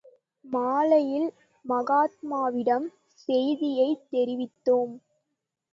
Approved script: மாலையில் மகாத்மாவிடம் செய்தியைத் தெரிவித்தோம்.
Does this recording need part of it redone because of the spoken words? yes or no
no